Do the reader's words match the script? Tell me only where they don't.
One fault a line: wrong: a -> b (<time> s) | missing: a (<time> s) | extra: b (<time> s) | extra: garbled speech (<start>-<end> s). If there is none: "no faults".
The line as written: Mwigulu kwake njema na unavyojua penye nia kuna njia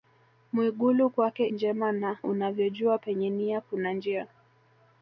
no faults